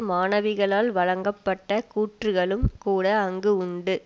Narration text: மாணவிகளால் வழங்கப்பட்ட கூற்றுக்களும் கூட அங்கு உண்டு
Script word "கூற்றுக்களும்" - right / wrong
right